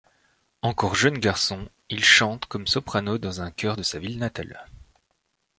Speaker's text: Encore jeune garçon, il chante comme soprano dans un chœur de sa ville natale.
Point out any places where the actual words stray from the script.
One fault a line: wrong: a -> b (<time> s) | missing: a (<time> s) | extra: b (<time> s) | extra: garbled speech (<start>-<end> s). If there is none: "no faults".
no faults